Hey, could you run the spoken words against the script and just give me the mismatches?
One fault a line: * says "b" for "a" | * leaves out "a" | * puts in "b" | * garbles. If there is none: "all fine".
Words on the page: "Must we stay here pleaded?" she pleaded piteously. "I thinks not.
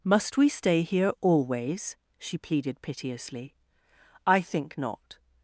* says "always" for "pleaded"
* says "think" for "thinks"